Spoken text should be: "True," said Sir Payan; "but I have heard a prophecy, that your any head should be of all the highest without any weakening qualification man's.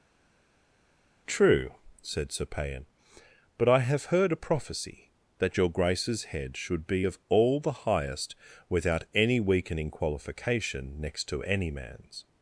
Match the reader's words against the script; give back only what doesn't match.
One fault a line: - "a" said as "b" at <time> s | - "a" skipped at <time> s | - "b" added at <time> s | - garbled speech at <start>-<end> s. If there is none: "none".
- "any" said as "grace's" at 5.7 s
- "next to any" added at 11.0 s